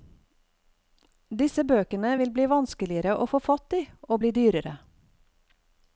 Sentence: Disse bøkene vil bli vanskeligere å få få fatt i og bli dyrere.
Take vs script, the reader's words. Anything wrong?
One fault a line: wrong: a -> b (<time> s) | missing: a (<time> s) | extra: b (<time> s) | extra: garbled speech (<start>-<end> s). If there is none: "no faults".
missing: få (3.4 s)